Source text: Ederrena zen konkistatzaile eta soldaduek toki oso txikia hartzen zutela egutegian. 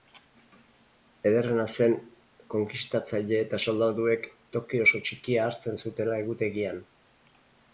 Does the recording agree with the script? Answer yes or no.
yes